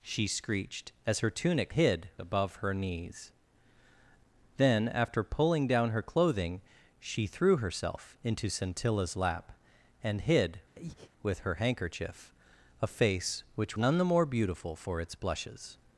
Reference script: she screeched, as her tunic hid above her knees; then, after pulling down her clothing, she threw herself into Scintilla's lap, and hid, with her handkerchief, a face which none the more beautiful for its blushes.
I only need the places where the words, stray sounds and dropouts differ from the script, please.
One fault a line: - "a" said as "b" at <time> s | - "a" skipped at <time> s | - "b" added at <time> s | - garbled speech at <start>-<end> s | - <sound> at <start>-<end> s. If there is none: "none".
- breath at 10.7-11.1 s